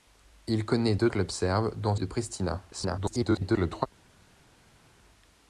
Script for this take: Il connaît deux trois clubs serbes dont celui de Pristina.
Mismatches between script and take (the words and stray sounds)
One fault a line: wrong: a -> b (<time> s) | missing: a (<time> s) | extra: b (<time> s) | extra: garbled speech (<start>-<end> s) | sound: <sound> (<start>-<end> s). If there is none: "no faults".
missing: trois (1.1 s)
missing: celui (1.9 s)
extra: garbled speech (2.7-3.9 s)